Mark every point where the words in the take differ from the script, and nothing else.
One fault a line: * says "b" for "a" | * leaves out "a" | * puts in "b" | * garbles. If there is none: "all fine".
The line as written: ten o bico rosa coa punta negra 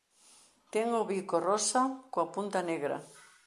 all fine